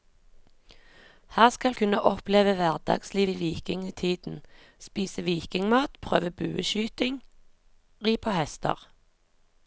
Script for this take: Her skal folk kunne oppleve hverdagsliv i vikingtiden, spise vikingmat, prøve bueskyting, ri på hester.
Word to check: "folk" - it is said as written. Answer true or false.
false